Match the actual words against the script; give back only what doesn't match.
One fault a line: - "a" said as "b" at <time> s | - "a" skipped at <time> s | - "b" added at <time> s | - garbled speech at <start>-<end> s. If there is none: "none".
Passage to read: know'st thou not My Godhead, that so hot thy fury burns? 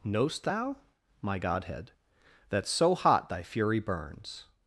- "not" skipped at 0.8 s